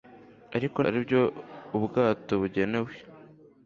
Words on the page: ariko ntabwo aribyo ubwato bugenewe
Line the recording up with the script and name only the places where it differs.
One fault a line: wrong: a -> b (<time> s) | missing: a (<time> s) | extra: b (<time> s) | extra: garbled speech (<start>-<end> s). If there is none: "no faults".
missing: ntabwo (0.8 s)